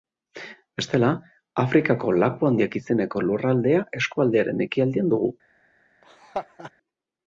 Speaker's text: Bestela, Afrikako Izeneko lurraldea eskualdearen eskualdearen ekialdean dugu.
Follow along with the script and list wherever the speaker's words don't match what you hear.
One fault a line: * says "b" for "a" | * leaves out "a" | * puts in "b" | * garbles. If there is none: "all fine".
* puts in "Laku Handiak"
* leaves out "eskualdearen"